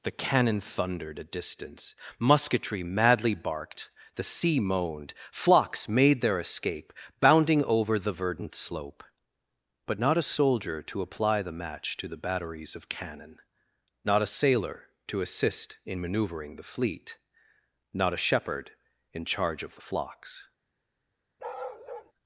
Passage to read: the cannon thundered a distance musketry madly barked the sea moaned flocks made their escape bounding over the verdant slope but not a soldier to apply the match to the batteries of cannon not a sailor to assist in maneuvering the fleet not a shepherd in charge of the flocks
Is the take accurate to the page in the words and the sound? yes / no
no